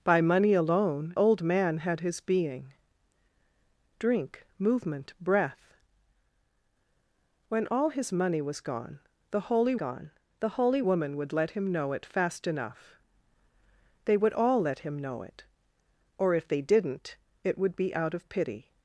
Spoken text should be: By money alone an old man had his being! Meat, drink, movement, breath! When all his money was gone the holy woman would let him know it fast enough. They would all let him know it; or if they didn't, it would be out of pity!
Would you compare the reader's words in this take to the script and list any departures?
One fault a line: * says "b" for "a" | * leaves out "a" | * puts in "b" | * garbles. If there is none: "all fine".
* leaves out "an"
* leaves out "Meat"
* puts in "gone the holy"